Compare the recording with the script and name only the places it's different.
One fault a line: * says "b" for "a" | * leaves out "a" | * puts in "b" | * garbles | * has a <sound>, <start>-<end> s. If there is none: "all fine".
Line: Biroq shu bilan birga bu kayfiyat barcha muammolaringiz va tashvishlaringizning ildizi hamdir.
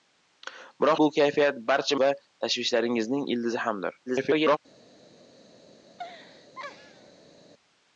* leaves out "shu bilan birga"
* leaves out "muammolaringiz"
* garbles
* has a laugh, 5.9-7.5 s